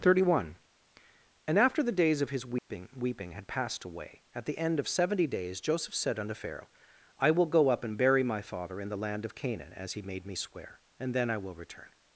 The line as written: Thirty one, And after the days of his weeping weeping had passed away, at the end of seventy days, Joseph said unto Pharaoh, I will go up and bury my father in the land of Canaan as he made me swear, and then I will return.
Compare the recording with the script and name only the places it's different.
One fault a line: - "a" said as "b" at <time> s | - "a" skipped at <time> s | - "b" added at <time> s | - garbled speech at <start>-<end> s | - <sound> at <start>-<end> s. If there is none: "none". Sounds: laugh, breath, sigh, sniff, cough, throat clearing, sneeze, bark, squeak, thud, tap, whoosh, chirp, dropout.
- dropout at 2.6-2.7 s